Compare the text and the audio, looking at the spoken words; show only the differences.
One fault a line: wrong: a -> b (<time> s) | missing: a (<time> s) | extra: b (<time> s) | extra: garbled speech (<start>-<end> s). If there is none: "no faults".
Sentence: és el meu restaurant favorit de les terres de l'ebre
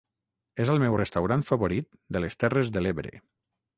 no faults